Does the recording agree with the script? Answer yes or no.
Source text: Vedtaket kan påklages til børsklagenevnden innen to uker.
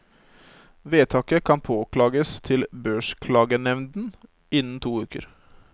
yes